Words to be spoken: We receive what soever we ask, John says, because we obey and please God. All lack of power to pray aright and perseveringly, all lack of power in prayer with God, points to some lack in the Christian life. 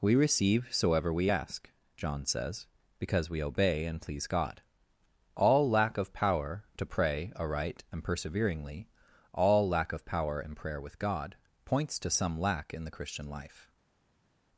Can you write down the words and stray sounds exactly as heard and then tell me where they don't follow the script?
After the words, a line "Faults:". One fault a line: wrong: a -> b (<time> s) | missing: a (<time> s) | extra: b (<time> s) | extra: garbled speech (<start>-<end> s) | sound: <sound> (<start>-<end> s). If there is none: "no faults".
We receive soever we ask, John says, because we obey and please God. All lack of power to pray aright and perseveringly, all lack of power in prayer with God, points to some lack in the Christian life.
Faults:
missing: what (0.7 s)